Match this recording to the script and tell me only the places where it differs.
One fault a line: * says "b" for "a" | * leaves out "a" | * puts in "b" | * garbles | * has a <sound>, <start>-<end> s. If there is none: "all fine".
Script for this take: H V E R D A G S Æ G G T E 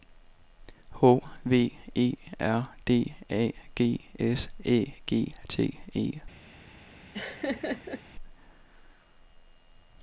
* leaves out "G"
* has a laugh, 7.1-8.0 s